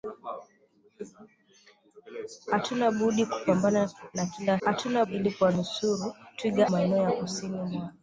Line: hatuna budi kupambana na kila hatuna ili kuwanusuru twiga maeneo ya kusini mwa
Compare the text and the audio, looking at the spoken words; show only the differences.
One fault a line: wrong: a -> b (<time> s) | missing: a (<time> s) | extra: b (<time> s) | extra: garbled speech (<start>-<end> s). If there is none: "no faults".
no faults